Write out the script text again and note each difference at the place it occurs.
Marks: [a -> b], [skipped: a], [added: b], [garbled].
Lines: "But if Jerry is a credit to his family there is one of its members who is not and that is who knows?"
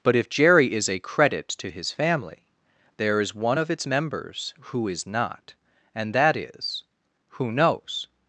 "But if Jerry is a credit to his family there is one of its members who is not and that is who knows?"